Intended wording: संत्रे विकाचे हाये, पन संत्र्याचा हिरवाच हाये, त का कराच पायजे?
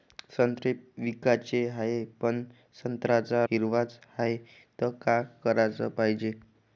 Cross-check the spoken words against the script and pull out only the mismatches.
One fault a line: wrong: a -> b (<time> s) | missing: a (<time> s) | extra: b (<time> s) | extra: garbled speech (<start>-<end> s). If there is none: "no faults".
no faults